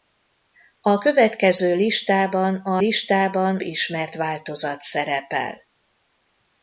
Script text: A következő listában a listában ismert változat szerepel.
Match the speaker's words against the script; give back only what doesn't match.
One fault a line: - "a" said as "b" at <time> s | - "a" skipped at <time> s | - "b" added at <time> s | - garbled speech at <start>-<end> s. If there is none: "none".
none